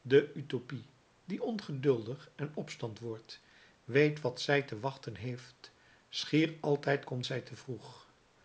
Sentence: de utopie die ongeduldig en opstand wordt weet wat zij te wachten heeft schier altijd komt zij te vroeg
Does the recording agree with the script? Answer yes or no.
yes